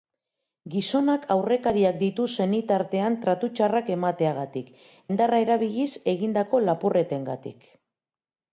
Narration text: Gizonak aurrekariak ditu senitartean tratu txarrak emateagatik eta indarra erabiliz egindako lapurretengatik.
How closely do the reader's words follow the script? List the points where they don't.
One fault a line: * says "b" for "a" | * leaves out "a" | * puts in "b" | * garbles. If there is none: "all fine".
* leaves out "eta"